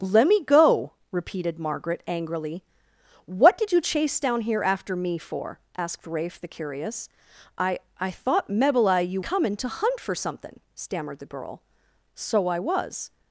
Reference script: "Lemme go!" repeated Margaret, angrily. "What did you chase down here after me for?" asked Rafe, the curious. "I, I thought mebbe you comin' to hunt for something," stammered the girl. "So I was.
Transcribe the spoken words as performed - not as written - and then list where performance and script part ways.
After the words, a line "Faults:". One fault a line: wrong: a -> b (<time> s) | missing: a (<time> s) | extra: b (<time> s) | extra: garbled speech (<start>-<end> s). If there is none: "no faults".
"Lemme go!" repeated Margaret, angrily. "What did you chase down here after me for?" asked Rafe, the curious. "I, I thought mebbe you comin' to hunt for something," stammered the girl. "So I was.
Faults:
no faults